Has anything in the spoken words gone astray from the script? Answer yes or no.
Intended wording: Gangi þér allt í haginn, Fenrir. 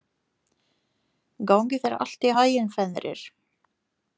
no